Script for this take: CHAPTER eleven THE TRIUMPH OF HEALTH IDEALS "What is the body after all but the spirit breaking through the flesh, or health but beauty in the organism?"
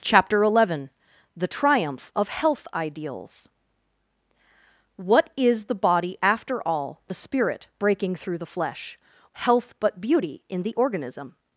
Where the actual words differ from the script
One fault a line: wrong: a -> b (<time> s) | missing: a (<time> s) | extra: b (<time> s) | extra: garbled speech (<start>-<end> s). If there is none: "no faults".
missing: but (7.0 s)
missing: or (9.0 s)